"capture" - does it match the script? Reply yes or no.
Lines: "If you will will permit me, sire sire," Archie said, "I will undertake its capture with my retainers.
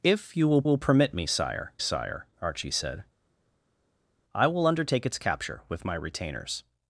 yes